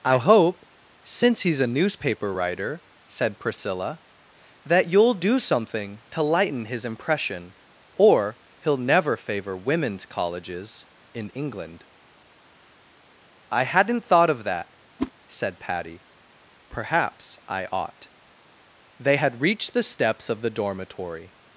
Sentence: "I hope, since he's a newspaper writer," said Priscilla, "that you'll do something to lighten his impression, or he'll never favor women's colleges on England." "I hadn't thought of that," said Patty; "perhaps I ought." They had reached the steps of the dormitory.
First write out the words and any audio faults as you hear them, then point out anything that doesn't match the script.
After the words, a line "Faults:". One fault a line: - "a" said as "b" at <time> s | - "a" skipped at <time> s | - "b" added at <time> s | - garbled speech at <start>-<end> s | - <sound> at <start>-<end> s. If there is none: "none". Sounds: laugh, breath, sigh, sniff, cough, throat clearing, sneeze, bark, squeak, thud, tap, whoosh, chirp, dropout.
"I hope, since he's a newspaper writer," said Priscilla, "that you'll do something to lighten his impression, or he'll never favor women's colleges in England." "I hadn't thought of that," said Patty; "perhaps I ought." They had reached the steps of the dormitory.
Faults:
- "on" said as "in" at 11.1 s
- whoosh at 15.0-15.1 s